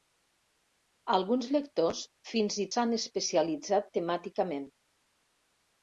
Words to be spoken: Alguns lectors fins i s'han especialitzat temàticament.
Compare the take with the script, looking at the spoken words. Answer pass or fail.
pass